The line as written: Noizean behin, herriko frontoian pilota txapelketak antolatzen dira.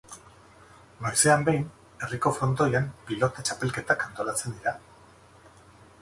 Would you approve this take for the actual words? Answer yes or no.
yes